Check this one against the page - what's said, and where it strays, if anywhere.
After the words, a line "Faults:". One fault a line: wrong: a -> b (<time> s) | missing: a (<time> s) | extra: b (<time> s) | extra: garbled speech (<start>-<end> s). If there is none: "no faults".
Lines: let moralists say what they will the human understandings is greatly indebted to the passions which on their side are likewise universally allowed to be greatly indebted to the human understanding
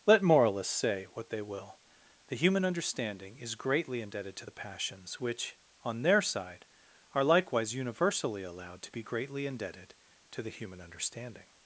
let moralists say what they will the human understanding is greatly indebted to the passions which on their side are likewise universally allowed to be greatly indebted to the human understanding
Faults:
wrong: understandings -> understanding (2.6 s)